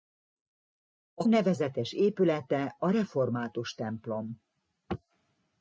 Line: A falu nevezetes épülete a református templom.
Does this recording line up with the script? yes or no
no